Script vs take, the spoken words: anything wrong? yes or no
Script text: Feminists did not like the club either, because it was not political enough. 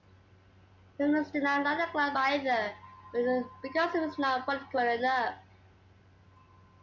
no